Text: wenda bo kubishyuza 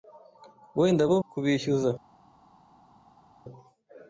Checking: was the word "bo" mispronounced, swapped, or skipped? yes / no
no